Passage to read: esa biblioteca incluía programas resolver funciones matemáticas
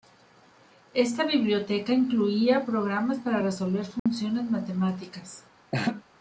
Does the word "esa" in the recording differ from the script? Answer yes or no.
yes